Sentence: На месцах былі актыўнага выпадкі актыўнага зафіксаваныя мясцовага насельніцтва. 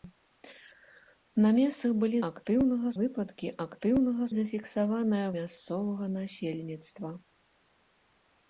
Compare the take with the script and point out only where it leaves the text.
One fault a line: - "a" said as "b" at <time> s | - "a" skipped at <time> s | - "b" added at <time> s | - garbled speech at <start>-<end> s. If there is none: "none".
none